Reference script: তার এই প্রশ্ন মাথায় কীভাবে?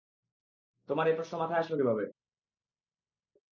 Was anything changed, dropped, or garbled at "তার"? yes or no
yes